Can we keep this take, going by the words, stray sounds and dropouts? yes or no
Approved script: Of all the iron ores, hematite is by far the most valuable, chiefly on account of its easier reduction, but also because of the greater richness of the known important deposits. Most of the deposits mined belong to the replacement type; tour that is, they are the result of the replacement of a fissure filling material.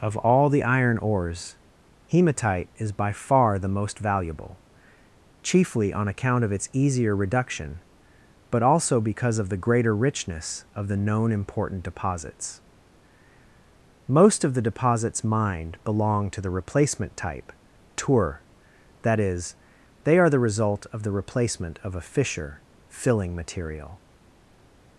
yes